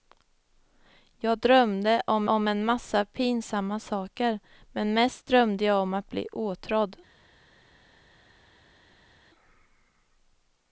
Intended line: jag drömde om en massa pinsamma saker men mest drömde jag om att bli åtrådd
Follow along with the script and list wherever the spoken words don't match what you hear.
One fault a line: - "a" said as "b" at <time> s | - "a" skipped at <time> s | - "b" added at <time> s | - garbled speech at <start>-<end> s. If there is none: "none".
- "om" added at 2.3 s